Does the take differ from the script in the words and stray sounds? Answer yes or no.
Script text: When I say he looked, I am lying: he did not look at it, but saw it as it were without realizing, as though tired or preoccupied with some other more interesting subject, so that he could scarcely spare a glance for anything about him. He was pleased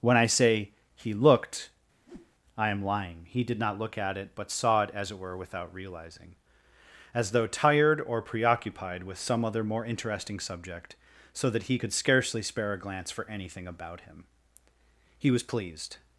yes